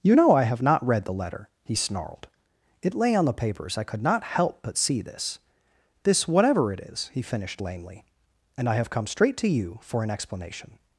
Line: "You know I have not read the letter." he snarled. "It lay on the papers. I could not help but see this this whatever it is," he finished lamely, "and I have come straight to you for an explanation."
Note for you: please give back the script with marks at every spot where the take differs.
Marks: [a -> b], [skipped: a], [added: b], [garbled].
"You know I have not read the letter." he snarled. "It lay on the papers. I could not help but see this this whatever it is," he finished lamely, "and I have come straight to you for an explanation."